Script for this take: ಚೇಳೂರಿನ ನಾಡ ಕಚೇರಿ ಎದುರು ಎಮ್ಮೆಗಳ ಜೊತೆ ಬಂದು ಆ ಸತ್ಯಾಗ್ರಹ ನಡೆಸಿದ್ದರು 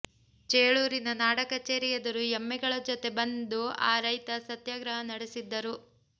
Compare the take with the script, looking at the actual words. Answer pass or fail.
fail